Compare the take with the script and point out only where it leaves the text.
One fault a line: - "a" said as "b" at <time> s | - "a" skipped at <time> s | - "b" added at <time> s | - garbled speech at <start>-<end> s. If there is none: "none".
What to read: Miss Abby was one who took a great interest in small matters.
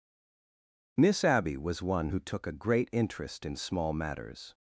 none